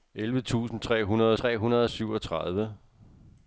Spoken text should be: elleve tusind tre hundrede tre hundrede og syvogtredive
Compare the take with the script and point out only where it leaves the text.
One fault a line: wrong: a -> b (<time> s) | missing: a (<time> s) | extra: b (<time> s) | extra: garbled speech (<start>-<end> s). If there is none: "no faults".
no faults